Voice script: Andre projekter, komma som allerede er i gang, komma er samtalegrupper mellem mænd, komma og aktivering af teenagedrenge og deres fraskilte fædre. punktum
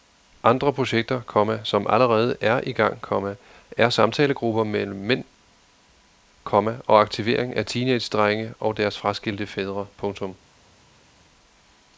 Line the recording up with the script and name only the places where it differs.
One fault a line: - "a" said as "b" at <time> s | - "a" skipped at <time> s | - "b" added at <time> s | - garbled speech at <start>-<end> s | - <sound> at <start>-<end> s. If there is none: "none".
none